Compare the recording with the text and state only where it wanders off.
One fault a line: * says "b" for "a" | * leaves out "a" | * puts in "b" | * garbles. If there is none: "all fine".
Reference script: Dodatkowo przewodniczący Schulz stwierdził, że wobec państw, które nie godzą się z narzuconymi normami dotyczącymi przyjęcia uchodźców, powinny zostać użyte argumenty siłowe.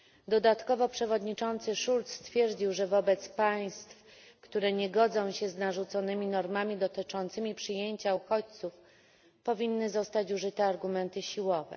all fine